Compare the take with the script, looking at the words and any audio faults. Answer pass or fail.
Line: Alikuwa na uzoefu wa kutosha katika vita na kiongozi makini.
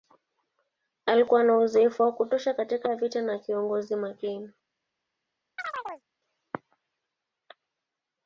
fail